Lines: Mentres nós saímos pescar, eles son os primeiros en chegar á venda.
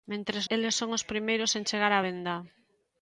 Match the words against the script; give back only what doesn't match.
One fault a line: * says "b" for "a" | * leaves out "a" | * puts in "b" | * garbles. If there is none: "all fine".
* leaves out "nós saímos pescar"